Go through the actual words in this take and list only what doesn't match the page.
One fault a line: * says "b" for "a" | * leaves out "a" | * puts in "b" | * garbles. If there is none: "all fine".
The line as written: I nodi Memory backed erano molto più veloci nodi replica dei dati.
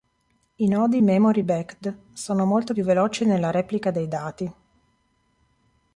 * says "sono" for "erano"
* says "nella" for "nodi"